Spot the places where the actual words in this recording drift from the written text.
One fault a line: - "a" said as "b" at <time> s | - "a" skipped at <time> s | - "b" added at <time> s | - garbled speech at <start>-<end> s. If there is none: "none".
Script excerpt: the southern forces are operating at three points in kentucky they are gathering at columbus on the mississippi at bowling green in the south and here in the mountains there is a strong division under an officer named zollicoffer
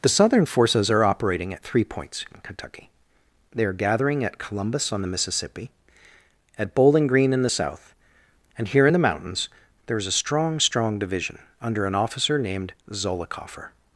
- "strong" added at 10.6 s